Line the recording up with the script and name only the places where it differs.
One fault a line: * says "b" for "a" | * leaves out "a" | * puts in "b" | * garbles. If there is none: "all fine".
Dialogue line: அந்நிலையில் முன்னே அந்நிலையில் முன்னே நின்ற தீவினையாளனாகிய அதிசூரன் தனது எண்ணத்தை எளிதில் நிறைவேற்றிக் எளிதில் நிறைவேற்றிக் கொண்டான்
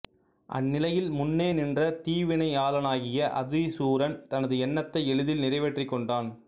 * leaves out "அந்நிலையில் முன்னே"
* leaves out "எளிதில் நிறைவேற்றிக்"